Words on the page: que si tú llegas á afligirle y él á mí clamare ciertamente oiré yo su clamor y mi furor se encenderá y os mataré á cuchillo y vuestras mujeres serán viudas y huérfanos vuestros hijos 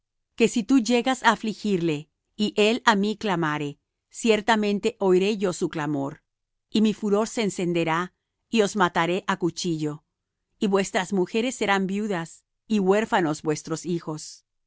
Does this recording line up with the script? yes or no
yes